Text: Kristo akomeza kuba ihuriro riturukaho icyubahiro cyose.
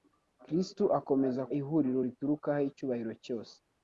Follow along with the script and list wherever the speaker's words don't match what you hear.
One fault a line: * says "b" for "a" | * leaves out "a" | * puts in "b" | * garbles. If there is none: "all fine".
* leaves out "kuba"